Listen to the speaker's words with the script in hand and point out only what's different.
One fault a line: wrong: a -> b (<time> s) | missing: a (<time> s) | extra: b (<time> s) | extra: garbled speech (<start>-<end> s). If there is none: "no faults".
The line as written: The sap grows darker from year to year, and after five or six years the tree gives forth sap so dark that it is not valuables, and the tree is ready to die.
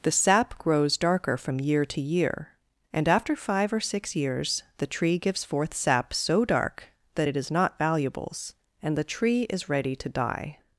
no faults